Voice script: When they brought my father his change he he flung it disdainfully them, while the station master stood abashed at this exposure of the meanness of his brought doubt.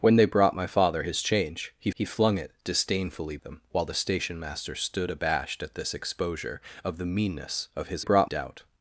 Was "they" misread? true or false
false